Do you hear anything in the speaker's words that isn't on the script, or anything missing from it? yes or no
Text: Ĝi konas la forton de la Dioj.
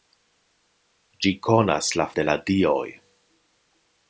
yes